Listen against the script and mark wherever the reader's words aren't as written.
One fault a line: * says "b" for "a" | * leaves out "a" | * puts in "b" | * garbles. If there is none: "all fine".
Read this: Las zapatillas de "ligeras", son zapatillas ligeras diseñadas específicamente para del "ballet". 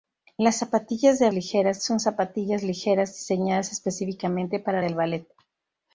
all fine